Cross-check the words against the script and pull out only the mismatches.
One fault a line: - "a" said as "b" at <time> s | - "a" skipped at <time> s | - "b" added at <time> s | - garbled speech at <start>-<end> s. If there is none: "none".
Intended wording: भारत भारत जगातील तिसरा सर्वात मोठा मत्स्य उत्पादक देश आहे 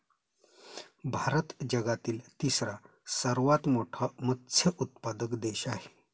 - "भारत" skipped at 1.5 s